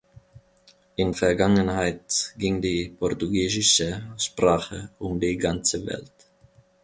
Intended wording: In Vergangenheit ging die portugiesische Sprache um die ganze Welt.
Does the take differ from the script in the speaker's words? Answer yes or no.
no